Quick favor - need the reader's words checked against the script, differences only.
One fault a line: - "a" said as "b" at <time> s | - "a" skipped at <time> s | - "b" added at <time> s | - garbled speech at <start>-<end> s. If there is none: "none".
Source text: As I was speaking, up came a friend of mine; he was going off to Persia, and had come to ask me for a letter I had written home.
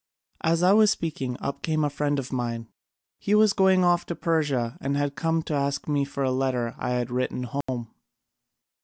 none